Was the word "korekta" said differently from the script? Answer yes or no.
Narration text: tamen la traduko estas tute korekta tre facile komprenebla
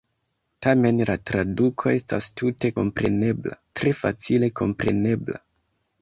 yes